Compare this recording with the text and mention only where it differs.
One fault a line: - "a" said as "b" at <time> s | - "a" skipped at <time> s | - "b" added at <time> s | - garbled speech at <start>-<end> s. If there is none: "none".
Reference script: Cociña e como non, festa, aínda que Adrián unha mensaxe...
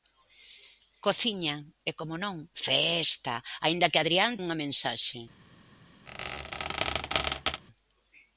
none